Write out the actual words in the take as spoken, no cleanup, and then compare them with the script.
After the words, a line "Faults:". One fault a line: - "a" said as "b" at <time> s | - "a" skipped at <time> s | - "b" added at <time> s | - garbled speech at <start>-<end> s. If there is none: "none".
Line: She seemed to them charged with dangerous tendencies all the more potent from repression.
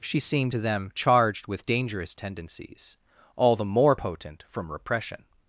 She seemed to them charged with dangerous tendencies all the more potent from repression.
Faults:
none